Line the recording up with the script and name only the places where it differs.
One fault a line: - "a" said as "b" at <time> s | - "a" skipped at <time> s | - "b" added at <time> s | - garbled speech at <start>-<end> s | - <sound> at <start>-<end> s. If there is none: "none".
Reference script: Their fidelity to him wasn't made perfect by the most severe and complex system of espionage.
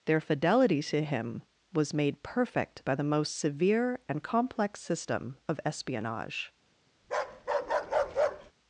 - "wasn't" said as "was" at 1.7 s
- bark at 7.0-8.5 s